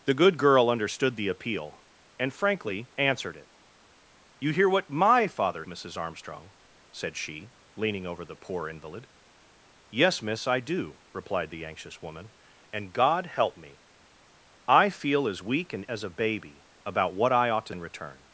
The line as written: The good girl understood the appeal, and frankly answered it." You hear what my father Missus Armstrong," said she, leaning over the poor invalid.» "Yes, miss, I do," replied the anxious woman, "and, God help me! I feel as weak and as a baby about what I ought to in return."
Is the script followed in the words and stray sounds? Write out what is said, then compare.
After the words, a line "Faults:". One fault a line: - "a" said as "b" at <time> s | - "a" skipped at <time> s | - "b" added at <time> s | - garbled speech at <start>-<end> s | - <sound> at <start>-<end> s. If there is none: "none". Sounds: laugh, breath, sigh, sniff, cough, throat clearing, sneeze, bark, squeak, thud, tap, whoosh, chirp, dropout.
The good girl understood the appeal, and frankly answered it." You hear what my father Missus Armstrong," said she, leaning over the poor invalid.» "Yes, miss, I do," replied the anxious woman, "and, God help me! I feel as weak and as a baby about what I ought to in return."
Faults:
none